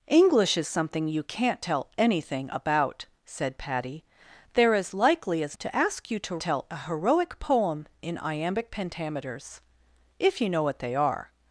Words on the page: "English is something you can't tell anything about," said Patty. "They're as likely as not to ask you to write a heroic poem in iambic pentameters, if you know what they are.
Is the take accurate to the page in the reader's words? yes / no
no